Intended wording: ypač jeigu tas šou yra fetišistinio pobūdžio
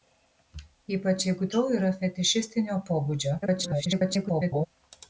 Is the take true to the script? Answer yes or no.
no